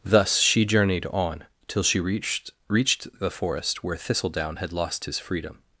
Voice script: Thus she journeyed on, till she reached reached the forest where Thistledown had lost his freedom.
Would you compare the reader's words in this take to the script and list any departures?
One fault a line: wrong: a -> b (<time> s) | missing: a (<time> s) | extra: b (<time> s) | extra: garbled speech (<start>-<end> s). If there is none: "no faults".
no faults